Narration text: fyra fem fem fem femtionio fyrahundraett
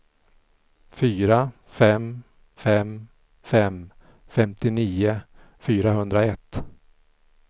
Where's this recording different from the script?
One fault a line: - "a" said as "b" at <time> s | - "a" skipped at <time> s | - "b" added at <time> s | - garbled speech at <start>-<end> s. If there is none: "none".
none